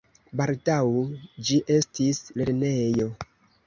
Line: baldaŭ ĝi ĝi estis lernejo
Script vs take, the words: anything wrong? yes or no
yes